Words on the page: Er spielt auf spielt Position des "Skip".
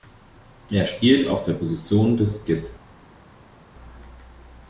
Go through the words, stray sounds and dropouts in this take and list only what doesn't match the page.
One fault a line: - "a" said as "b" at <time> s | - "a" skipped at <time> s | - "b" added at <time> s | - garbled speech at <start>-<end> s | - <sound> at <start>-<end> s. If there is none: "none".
- "spielt" said as "der" at 1.4 s